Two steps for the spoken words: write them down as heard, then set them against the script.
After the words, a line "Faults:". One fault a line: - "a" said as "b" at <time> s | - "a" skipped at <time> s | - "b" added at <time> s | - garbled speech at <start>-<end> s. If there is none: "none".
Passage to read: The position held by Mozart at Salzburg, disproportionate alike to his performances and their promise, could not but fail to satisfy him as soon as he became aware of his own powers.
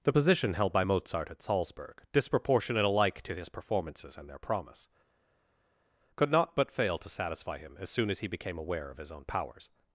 The position held by Mozart at Salzburg, disproportionate alike to his performances and their promise, could not but fail to satisfy him as soon as he became aware of his own powers.
Faults:
none